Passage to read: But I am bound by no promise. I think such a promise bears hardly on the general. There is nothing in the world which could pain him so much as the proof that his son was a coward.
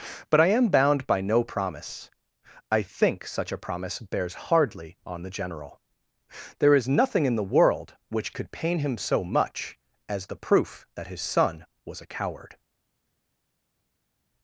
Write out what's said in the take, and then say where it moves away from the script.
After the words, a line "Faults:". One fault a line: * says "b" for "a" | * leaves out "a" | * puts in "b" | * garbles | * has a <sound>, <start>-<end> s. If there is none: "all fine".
But I am bound by no promise. I think such a promise bears hardly on the general. There is nothing in the world which could pain him so much as the proof that his son was a coward.
Faults:
all fine